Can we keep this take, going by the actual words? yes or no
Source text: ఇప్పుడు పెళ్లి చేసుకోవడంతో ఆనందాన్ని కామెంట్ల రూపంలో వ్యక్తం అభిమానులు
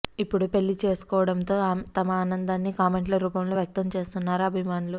no